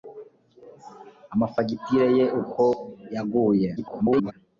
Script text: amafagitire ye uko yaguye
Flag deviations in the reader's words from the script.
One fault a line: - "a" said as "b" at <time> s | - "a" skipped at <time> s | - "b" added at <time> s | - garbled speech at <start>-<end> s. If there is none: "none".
- garbled speech at 3.8-4.3 s